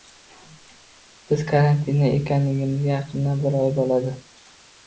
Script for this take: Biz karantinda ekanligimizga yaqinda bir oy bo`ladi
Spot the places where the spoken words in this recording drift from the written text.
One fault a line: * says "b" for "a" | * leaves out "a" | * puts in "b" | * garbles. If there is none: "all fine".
all fine